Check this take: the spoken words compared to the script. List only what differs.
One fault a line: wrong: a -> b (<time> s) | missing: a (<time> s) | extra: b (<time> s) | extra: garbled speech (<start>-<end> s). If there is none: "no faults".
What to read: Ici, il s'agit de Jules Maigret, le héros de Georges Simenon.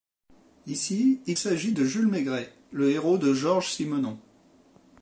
no faults